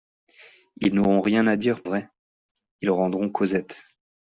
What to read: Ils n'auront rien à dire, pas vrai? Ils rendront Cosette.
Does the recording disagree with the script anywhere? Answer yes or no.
yes